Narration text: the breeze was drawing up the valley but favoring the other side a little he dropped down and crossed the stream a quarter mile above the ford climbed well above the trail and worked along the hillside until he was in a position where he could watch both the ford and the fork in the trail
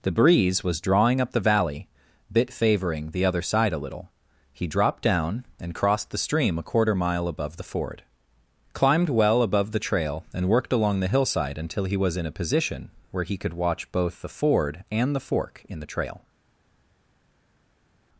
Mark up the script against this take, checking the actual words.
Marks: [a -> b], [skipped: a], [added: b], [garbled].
the breeze was drawing up the valley [but -> bit] favoring the other side a little he dropped down and crossed the stream a quarter mile above the ford climbed well above the trail and worked along the hillside until he was in a position where he could watch both the ford and the fork in the trail